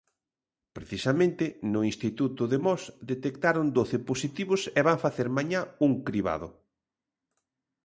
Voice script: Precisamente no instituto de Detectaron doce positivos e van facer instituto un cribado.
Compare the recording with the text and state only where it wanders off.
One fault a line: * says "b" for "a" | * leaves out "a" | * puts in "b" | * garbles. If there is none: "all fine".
* puts in "Mos"
* says "mañá" for "instituto"